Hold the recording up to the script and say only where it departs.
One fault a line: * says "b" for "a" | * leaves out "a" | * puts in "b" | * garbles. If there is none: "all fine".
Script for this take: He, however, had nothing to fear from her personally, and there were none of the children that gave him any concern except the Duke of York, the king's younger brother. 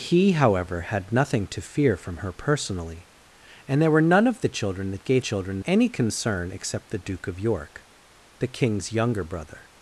* says "children" for "him"